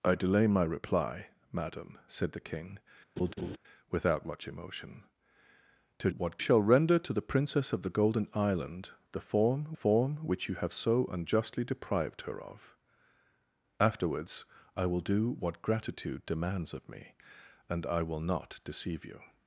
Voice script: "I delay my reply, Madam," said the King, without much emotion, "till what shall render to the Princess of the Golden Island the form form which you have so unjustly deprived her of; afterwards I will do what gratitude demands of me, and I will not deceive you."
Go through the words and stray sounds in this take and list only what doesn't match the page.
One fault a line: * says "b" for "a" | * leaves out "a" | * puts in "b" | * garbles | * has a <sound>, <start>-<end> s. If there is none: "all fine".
* has a laugh, 3.2-3.6 s